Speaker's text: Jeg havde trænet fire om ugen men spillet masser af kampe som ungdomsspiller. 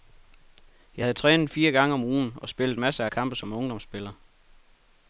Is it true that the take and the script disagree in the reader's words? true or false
true